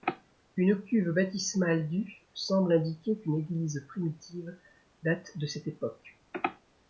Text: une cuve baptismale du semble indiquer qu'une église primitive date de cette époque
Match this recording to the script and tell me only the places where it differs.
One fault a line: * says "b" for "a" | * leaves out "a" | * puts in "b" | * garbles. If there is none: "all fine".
all fine